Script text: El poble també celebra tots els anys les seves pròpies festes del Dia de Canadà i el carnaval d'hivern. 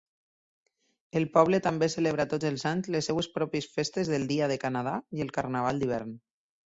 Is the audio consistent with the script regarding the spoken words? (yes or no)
yes